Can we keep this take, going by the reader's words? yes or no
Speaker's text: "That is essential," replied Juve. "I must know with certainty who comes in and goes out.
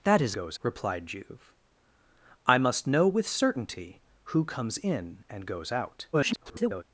no